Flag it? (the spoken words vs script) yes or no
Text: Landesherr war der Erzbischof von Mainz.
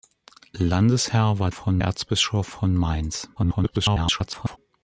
yes